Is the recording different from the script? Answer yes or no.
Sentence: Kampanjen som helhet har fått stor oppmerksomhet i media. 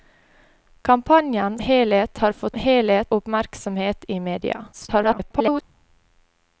yes